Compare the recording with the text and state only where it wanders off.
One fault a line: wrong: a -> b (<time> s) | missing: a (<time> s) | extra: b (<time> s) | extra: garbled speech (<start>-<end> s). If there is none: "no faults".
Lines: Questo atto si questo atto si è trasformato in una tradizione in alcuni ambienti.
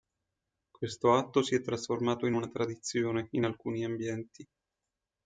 missing: questo atto si (1.5 s)